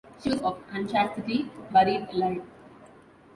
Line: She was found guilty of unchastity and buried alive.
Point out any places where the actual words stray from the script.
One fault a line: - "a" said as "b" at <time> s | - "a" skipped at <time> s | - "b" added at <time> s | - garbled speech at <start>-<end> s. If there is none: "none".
- "found guilty" skipped at 0.4 s
- "and" skipped at 1.5 s